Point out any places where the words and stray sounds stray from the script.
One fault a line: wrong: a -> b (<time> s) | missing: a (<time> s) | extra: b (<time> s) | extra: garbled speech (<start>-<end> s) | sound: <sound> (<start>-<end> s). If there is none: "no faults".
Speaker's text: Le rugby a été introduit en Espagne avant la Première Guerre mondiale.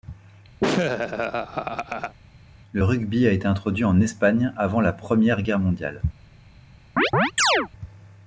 sound: laugh (0.6-2.2 s)
sound: chirp (7.0-7.7 s)